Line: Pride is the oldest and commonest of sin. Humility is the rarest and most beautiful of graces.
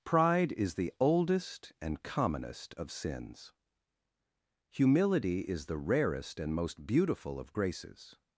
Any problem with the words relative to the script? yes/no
yes